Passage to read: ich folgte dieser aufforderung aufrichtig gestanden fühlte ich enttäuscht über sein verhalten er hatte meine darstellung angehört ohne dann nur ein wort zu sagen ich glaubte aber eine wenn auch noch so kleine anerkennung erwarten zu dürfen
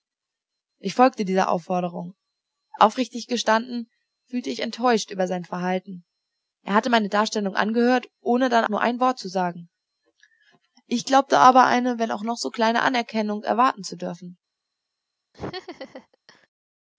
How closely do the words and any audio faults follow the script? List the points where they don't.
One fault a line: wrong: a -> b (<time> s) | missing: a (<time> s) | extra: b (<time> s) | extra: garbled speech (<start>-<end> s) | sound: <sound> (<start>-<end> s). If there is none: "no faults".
sound: laugh (15.3-16.5 s)